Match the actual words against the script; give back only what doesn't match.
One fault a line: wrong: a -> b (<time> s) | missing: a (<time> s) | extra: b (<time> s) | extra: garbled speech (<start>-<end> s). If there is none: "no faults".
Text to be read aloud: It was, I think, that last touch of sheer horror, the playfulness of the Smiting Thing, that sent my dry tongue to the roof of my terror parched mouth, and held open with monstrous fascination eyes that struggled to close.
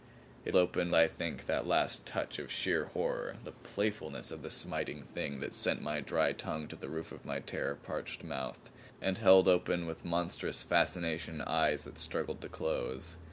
wrong: was -> open (0.6 s)